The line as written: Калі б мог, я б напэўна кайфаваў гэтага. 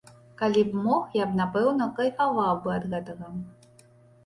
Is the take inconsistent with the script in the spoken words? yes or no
yes